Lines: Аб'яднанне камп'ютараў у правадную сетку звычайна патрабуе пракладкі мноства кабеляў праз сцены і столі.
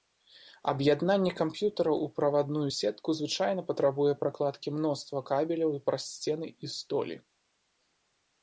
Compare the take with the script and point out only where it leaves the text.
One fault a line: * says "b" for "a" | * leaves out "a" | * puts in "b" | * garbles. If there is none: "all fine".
all fine